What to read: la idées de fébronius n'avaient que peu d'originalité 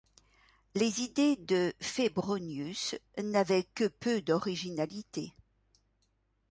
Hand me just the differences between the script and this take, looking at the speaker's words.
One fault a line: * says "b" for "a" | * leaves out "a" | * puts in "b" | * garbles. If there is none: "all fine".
* says "les" for "la"